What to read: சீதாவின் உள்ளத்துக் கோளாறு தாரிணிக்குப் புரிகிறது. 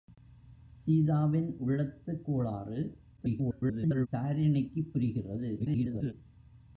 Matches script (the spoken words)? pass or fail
fail